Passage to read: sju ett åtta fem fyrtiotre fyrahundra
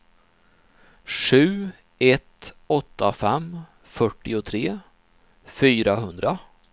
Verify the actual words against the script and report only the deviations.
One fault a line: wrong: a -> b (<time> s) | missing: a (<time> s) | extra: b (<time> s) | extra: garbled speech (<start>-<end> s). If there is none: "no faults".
no faults